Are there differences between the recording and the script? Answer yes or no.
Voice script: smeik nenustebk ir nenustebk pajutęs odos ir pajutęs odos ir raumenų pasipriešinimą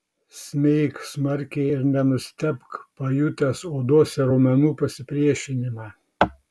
yes